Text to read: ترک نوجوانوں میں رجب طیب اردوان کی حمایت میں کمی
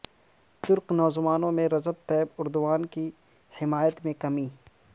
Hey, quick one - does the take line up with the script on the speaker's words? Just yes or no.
yes